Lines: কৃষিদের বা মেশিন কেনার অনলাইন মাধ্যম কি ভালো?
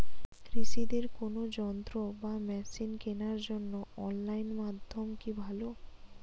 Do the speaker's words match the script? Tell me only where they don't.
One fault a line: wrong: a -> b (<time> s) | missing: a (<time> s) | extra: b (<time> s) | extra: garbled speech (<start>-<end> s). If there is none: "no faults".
extra: কোন যন্ত্র (1.2 s)
extra: জন্য (3.5 s)